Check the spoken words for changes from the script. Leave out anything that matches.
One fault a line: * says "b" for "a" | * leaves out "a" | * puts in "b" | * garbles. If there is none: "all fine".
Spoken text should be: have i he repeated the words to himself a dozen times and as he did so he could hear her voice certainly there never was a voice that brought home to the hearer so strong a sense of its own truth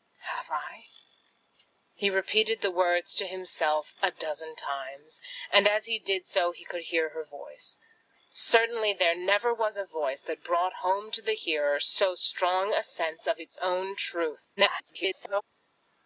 * garbles